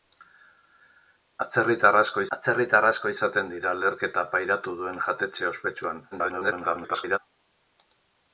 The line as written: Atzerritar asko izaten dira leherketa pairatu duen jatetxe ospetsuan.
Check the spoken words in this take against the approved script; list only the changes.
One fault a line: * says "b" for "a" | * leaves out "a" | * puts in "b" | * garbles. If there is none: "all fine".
* puts in "atzerritar asko"
* garbles